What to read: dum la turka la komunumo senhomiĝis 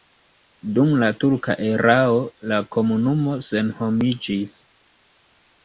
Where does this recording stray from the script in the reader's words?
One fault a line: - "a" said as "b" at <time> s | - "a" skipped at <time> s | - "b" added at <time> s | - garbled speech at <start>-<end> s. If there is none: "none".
- "erao" added at 1.7 s